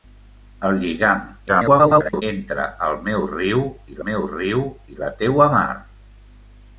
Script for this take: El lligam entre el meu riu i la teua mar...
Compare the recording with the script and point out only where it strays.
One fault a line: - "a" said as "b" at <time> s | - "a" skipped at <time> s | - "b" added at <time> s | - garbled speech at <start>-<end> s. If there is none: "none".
- garbled speech at 1.5-2.2 s
- "meu riu i" added at 4.1 s